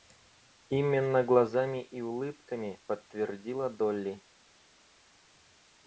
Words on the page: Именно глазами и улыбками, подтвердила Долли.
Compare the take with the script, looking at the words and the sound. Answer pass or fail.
pass